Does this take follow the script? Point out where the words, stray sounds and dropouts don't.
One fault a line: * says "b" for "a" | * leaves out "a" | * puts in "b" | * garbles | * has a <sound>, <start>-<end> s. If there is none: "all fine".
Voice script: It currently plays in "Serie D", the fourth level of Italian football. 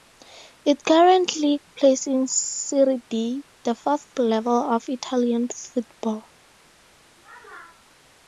all fine